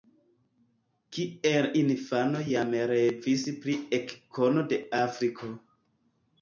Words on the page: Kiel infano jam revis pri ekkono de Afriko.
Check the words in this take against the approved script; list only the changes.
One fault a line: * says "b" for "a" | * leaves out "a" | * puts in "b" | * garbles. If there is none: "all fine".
all fine